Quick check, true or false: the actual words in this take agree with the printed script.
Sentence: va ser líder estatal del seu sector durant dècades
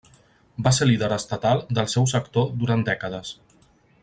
true